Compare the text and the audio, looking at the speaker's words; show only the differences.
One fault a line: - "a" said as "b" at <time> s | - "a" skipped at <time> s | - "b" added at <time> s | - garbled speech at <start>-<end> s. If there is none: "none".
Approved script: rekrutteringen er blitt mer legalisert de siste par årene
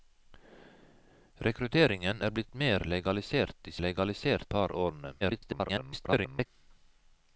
- "siste" said as "legalisert" at 3.9 s
- garbled speech at 5.2-6.5 s